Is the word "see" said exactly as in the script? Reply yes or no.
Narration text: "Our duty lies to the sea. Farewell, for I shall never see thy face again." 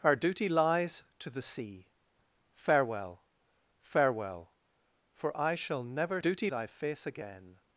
no